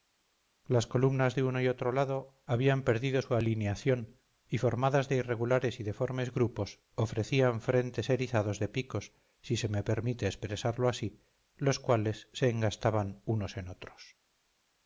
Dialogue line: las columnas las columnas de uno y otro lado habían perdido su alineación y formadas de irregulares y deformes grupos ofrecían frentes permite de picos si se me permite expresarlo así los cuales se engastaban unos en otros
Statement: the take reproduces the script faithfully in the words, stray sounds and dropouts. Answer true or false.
false